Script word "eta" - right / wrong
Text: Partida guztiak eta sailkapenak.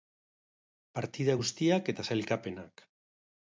right